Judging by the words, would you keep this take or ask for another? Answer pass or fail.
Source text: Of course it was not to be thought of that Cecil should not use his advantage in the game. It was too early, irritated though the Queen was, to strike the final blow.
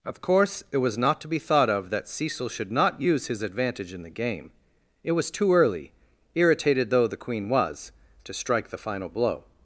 pass